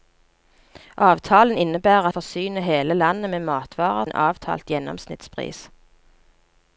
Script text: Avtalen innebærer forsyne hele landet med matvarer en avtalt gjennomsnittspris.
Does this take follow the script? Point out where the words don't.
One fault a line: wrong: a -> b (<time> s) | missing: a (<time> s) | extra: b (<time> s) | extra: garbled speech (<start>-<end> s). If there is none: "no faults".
no faults